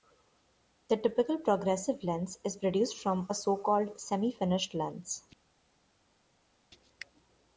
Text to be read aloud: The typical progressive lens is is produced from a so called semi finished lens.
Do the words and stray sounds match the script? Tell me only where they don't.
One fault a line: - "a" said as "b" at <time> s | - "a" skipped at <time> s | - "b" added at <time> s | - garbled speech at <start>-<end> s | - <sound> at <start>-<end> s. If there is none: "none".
- "is" skipped at 2.6 s